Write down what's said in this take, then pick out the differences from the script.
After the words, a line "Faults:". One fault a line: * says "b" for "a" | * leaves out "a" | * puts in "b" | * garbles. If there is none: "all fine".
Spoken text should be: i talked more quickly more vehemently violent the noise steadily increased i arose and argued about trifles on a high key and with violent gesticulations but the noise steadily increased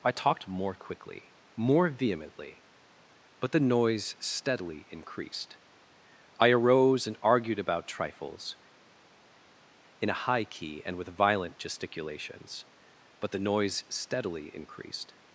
i talked more quickly more vehemently but the noise steadily increased i arose and argued about trifles in a high key and with violent gesticulations but the noise steadily increased
Faults:
* says "but" for "violent"
* says "in" for "on"